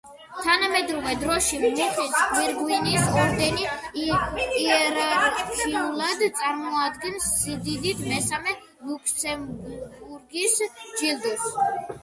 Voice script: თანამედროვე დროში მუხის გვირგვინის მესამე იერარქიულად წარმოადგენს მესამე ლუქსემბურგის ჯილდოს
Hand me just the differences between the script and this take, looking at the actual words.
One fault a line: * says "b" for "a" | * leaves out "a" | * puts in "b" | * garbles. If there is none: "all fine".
* says "ორდენი" for "მესამე"
* puts in "სიდიდით"